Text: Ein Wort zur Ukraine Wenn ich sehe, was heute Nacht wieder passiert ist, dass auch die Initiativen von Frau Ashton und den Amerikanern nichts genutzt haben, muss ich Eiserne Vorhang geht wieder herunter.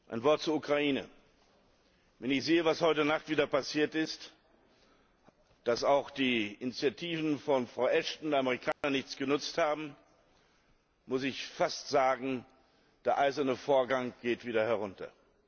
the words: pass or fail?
fail